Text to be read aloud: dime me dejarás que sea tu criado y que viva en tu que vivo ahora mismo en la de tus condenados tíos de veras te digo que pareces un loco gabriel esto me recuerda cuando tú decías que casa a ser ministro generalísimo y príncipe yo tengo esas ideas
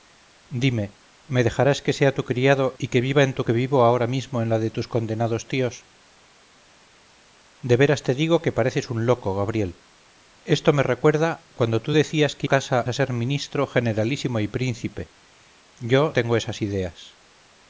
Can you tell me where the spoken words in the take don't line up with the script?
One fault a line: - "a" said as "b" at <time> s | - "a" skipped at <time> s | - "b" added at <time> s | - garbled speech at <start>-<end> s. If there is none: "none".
none